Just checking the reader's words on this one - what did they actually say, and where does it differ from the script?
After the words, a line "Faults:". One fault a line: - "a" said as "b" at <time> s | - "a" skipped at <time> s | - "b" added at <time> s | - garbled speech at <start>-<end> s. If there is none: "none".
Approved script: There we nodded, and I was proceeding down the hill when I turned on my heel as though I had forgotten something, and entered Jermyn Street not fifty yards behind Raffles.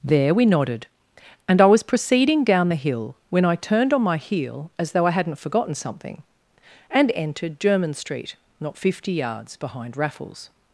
There we nodded, and I was proceeding down the hill when I turned on my heel as though I hadn't forgotten something, and entered Jermyn Street not fifty yards behind Raffles.
Faults:
- "had" said as "hadn't" at 5.1 s